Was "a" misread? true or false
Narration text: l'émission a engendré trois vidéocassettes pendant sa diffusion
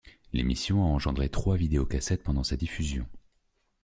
false